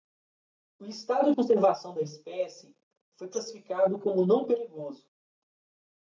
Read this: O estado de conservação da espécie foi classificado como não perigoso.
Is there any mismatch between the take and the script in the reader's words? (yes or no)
yes